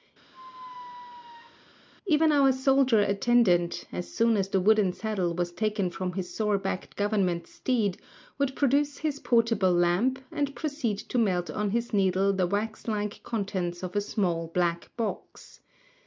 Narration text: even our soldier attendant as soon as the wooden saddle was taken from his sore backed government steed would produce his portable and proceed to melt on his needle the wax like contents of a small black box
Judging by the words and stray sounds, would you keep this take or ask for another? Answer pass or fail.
fail